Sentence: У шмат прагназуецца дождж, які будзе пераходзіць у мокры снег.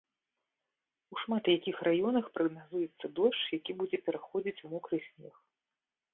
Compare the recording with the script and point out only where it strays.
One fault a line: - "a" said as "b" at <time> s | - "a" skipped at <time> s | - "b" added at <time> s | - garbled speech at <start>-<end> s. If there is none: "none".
- "якіх раёнах" added at 1.6 s